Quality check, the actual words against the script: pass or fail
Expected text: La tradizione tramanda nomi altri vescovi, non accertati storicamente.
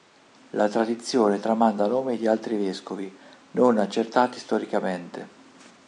fail